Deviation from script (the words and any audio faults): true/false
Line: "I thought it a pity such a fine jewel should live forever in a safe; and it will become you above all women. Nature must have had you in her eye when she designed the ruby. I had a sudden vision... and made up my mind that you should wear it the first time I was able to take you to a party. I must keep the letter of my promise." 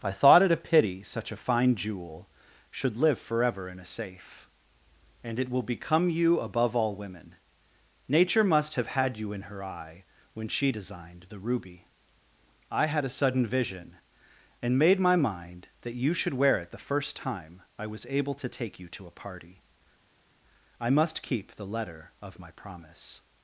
true